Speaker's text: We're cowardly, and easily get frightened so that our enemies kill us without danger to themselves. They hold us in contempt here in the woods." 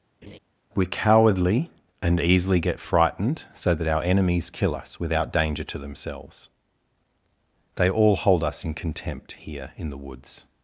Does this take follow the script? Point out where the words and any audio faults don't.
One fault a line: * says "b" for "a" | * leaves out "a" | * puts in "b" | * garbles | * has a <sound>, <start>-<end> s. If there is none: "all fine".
* has a laugh, 0.2-0.4 s
* puts in "all"